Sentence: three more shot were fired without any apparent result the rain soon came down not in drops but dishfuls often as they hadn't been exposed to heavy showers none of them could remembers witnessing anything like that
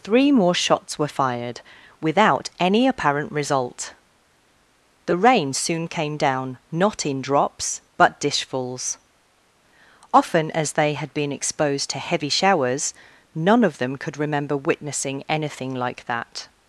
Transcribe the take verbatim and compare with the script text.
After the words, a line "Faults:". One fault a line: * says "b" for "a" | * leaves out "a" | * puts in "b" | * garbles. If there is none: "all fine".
three more shots were fired without any apparent result the rain soon came down not in drops but dishfuls often as they had been exposed to heavy showers none of them could remember witnessing anything like that
Faults:
* says "shots" for "shot"
* says "had" for "hadn't"
* says "remember" for "remembers"